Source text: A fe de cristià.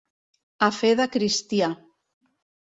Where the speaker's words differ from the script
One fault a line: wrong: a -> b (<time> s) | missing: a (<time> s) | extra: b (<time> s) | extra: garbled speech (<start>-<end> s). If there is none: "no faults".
no faults